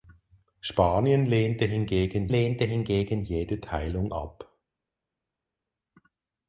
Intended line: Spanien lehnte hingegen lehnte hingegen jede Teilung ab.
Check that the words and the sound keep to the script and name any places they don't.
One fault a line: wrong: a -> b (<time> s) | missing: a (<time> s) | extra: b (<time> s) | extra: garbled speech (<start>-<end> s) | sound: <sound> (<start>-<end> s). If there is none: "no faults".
no faults